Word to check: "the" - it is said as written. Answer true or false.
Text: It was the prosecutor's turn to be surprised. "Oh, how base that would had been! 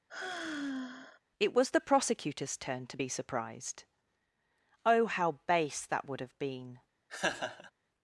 true